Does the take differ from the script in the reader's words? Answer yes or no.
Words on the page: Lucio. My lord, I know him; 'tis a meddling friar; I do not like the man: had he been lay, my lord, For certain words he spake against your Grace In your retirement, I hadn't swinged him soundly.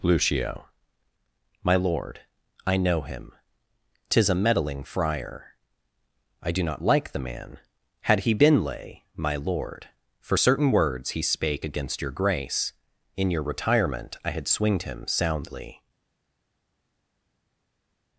yes